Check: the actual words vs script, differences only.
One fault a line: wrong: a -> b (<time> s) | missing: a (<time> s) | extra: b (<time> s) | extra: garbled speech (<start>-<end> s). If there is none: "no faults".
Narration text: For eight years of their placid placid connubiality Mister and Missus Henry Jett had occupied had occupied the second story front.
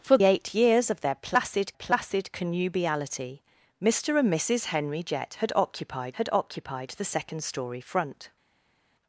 no faults